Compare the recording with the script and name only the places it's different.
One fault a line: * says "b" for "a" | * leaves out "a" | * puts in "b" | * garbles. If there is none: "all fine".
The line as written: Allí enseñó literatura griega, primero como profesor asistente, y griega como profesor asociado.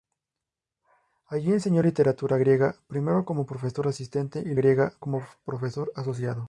all fine